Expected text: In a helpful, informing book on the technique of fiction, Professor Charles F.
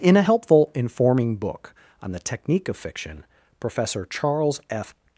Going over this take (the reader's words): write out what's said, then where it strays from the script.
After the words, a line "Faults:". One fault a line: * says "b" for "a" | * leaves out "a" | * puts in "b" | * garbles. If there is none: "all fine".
In a helpful, informing book on the technique of fiction, Professor Charles F.
Faults:
all fine